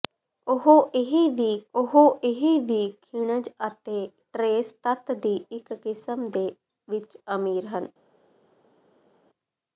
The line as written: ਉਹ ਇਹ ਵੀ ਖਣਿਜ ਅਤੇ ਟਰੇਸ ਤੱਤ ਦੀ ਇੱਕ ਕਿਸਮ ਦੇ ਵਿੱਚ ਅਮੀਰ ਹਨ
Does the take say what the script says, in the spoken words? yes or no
no